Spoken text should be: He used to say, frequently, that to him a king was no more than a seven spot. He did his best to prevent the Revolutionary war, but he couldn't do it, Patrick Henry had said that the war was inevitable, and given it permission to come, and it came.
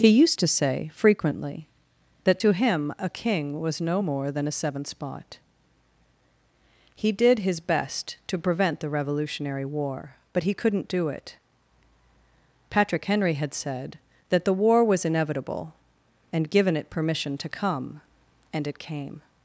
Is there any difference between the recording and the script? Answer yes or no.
yes